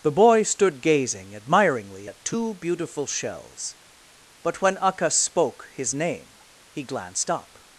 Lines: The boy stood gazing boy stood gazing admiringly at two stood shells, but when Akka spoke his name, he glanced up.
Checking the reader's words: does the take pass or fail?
fail